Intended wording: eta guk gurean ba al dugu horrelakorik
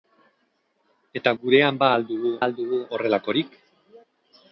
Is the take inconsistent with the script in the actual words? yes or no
yes